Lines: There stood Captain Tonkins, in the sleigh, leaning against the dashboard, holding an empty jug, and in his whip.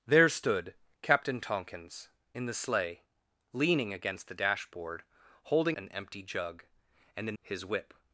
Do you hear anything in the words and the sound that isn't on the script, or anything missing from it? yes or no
no